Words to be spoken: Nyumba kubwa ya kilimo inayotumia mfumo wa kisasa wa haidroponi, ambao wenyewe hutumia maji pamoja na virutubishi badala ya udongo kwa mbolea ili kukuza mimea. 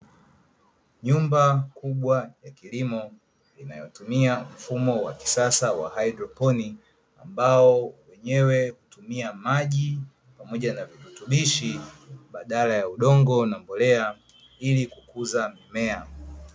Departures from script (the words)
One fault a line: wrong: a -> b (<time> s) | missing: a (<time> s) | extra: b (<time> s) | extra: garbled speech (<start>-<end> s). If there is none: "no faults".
wrong: kwa -> na (13.5 s)